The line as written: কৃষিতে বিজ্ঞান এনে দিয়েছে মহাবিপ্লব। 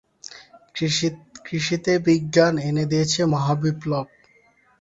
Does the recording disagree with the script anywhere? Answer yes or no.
no